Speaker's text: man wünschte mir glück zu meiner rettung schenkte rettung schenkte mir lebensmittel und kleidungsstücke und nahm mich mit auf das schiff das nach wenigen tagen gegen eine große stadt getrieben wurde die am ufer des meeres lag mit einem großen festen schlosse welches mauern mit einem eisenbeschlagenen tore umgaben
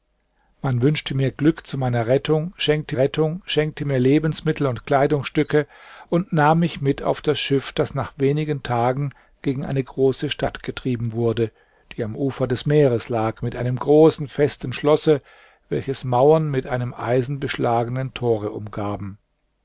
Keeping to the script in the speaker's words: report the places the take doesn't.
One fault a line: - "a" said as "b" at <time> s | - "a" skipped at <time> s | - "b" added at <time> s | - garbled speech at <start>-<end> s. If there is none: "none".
none